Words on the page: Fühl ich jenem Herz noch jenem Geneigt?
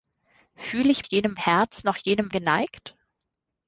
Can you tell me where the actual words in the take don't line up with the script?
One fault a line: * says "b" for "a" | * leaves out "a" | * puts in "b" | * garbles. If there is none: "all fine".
all fine